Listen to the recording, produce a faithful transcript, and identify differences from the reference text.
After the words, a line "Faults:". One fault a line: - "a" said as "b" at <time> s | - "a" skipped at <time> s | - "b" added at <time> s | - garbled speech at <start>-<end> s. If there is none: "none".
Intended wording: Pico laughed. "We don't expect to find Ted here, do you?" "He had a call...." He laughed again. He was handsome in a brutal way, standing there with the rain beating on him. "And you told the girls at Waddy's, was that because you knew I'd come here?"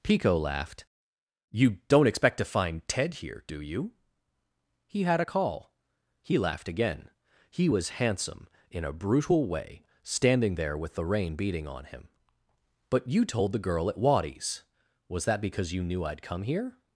Pico laughed. "You don't expect to find Ted here, do you?" "He had a call...." He laughed again. He was handsome in a brutal way, standing there with the rain beating on him. "But you told the girl at Waddy's, was that because you knew I'd come here?"
Faults:
- "We" said as "You" at 1.5 s
- "And" said as "But" at 12.9 s
- "girls" said as "girl" at 13.6 s